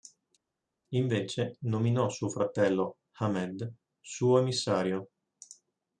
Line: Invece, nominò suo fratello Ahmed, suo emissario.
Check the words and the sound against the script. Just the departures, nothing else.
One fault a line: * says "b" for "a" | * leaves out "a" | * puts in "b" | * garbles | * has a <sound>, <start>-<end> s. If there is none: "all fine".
all fine